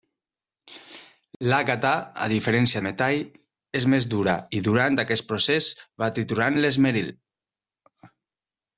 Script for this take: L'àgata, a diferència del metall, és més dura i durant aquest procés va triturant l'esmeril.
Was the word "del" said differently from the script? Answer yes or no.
yes